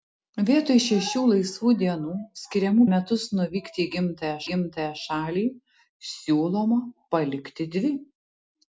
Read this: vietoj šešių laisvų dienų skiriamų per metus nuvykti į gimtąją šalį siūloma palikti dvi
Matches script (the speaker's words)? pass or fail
fail